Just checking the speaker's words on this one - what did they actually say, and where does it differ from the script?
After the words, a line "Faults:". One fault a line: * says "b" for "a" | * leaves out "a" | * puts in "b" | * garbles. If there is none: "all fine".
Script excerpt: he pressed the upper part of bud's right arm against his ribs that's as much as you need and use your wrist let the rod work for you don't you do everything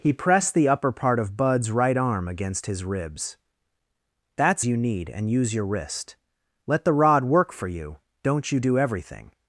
he pressed the upper part of bud's right arm against his ribs that's you need and use your wrist let the rod work for you don't you do everything
Faults:
* leaves out "as much as"